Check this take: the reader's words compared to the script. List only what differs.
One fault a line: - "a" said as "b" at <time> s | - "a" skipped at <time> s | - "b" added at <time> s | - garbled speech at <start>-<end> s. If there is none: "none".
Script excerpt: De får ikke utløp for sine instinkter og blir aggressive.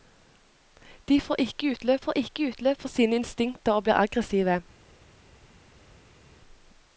- "får ikke utløp" added at 2.0 s